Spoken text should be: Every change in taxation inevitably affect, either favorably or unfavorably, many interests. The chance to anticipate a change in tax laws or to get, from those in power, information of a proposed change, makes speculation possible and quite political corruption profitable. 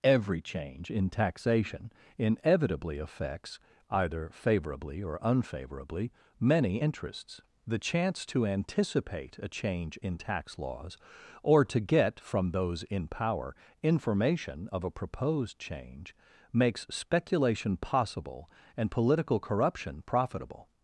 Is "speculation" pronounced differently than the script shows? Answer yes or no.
no